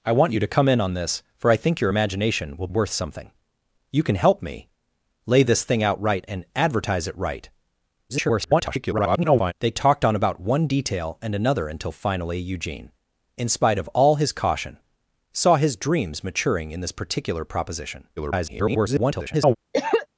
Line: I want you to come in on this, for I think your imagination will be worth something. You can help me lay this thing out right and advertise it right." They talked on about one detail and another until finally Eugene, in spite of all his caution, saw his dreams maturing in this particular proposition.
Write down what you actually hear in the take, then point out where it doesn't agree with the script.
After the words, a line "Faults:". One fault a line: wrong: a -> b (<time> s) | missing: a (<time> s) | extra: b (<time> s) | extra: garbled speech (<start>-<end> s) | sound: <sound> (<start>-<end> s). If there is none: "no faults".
I want you to come in on this, for I think your imagination will worth something. You can help me lay this thing out right and advertise it right." [garbled] They talked on about one detail and another until finally Eugene, in spite of all his caution, saw his dreams maturing in this particular proposition. [garbled]
Faults:
missing: be (2.7 s)
extra: garbled speech (8.1-9.5 s)
extra: garbled speech (18.2-19.6 s)
sound: cough (19.7-20.1 s)